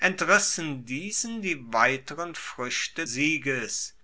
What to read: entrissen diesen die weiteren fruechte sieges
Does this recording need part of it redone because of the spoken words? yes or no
no